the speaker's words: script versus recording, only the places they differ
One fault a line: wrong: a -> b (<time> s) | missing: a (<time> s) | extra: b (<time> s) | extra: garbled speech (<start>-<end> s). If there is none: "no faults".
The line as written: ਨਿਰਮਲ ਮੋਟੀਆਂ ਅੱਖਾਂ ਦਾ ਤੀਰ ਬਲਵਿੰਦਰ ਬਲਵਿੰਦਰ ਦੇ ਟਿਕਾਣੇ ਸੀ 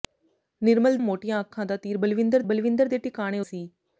no faults